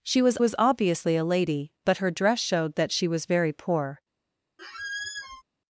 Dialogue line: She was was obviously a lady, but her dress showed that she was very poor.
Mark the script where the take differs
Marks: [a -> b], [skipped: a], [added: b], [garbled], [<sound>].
She was was obviously a lady, but her dress showed that she was very poor. [squeak]